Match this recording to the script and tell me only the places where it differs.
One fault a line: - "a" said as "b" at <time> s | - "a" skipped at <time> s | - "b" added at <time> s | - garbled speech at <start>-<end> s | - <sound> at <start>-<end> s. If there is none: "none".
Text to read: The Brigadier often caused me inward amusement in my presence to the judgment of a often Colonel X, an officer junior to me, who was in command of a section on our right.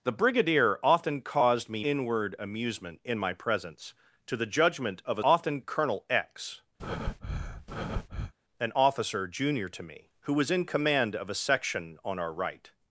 - breath at 6.8-8.3 s